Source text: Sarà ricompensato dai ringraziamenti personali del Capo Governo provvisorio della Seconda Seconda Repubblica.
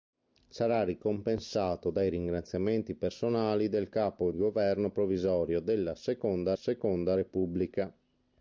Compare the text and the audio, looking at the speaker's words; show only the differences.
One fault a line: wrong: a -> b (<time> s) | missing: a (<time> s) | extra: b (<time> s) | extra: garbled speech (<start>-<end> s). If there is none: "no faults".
no faults